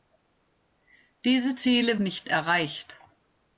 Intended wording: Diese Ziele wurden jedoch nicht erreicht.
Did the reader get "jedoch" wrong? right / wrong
wrong